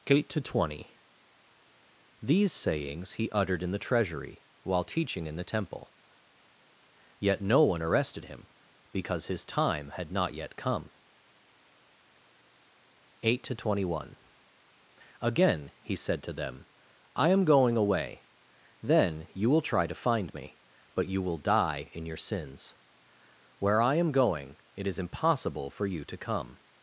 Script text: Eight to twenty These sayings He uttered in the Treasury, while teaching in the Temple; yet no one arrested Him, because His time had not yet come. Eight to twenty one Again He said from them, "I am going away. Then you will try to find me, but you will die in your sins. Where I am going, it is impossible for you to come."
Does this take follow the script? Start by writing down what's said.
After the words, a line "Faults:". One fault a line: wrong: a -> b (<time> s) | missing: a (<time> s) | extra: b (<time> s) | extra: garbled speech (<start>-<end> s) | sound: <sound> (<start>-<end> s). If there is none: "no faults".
Eight to twenty These sayings He uttered in the Treasury, while teaching in the Temple; yet no one arrested Him, because His time had not yet come. Eight to twenty one Again He said to them, "I am going away. Then you will try to find me, but you will die in your sins. Where I am going, it is impossible for you to come."
Faults:
wrong: from -> to (16.2 s)